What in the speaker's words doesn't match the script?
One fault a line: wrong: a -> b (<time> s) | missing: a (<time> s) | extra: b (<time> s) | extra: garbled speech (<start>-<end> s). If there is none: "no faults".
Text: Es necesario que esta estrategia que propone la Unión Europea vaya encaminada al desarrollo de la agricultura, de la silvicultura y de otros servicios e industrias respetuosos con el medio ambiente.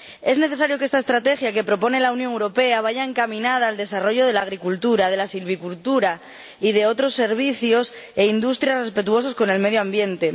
no faults